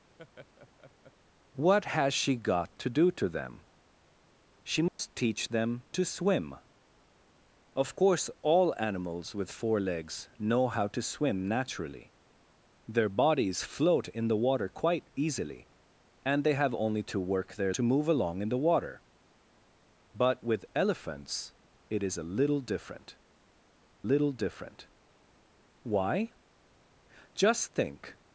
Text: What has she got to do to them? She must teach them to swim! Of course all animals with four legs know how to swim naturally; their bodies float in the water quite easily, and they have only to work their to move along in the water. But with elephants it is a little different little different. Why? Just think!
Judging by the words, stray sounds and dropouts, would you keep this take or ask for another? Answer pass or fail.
fail